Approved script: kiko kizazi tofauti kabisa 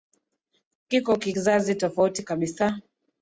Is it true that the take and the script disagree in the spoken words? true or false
false